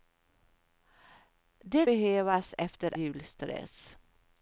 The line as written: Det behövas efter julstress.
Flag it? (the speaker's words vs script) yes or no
no